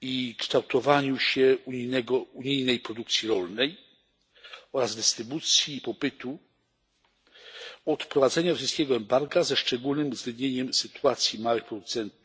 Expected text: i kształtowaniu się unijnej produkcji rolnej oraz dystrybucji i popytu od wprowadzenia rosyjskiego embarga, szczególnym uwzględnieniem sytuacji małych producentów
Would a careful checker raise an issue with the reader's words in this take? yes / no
yes